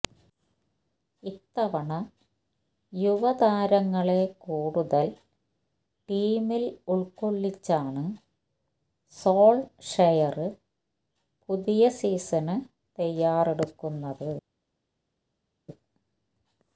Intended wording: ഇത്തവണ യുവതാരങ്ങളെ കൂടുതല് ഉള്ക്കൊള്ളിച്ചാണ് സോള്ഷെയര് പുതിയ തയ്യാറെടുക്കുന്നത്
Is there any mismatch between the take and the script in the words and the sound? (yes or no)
yes